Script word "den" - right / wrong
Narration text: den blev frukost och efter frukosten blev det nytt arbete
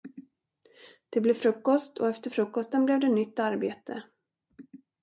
wrong